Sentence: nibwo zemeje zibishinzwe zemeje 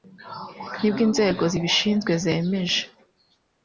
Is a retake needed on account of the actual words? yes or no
yes